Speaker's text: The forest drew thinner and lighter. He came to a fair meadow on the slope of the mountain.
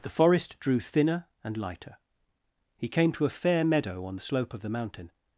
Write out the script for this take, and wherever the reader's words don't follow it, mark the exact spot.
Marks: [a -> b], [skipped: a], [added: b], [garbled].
The forest drew thinner and lighter. He came to a fair meadow on the slope of the mountain.